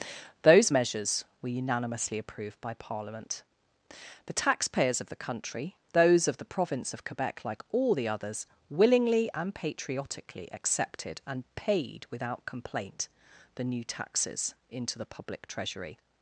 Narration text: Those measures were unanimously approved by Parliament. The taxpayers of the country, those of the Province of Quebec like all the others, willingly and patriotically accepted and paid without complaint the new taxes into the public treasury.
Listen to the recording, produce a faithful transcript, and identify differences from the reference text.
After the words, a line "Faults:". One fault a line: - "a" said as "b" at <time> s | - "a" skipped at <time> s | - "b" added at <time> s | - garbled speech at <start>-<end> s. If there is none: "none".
Those measures were unanimously approved by Parliament. The taxpayers of the country, those of the Province of Quebec like all the others, willingly and patriotically accepted and paid without complaint the new taxes into the public treasury.
Faults:
none